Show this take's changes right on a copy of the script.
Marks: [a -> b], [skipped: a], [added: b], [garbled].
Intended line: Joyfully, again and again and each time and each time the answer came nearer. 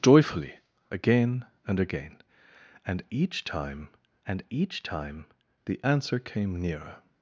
Joyfully, again and again and each time and each time the answer came nearer.